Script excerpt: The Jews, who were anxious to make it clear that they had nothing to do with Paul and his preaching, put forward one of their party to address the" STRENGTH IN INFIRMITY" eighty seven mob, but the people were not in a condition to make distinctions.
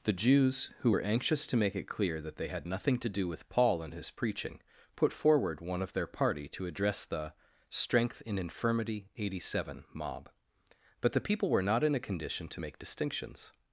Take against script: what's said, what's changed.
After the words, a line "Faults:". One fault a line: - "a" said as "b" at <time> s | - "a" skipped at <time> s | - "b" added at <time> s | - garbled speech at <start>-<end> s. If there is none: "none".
The Jews, who were anxious to make it clear that they had nothing to do with Paul and his preaching, put forward one of their party to address the" STRENGTH IN INFIRMITY" eighty seven mob, but the people were not in a condition to make distinctions.
Faults:
none